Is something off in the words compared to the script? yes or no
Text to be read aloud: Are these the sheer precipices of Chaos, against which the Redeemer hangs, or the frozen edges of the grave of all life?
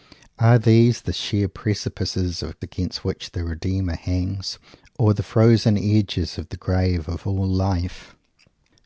yes